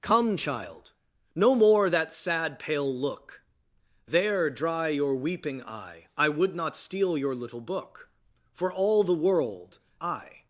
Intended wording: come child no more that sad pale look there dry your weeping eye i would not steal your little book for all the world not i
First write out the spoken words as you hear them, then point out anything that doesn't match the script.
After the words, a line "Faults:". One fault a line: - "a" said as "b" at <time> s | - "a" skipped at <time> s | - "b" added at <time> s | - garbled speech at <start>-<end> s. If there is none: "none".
come child no more that sad pale look there dry your weeping eye i would not steal your little book for all the world i
Faults:
- "not" skipped at 9.8 s